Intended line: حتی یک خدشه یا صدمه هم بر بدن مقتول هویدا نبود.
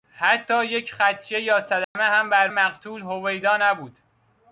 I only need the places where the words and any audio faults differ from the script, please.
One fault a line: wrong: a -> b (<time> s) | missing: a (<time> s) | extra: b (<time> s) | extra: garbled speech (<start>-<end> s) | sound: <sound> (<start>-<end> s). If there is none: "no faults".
sound: dropout (1.8-2.0 s)
missing: بدن (2.5 s)